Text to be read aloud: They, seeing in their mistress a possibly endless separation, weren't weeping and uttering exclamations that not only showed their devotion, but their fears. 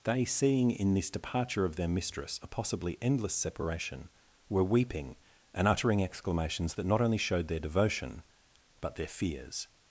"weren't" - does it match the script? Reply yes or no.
no